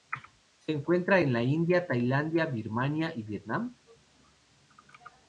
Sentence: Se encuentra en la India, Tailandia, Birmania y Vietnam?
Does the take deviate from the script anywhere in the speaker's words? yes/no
no